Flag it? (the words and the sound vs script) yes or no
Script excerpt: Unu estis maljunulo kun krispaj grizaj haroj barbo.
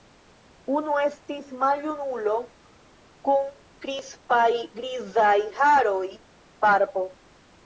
no